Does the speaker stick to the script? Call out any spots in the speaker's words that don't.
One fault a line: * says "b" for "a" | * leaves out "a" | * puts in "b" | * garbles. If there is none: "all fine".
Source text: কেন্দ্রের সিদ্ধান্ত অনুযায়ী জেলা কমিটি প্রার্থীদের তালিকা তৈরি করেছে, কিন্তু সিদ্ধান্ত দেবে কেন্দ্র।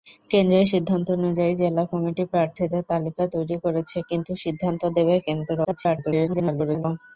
* garbles